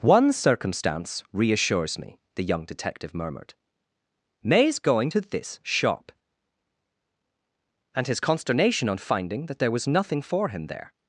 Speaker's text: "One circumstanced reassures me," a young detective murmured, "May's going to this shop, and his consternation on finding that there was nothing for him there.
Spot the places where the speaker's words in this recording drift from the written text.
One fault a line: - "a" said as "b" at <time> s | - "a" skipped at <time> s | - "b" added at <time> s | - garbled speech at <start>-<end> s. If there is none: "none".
- "circumstanced" said as "circumstance" at 0.3 s
- "a" said as "the" at 2.3 s